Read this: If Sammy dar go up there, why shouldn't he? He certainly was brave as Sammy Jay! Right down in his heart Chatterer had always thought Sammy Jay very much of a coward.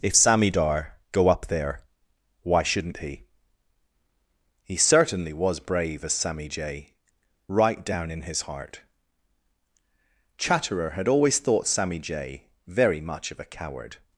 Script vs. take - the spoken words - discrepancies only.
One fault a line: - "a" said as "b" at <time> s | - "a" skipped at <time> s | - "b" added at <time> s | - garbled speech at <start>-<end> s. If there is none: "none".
none